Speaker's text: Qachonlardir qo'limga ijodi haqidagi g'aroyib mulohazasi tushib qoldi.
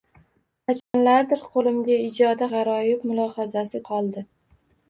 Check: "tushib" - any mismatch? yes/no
yes